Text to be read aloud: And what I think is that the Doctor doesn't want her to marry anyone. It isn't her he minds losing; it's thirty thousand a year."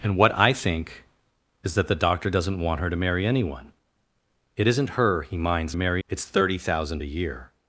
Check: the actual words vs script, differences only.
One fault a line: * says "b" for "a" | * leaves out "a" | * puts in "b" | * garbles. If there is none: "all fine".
* says "marry" for "losing"